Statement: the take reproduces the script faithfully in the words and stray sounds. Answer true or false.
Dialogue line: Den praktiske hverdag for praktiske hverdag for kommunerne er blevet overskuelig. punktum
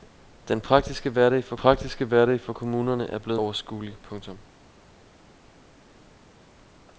true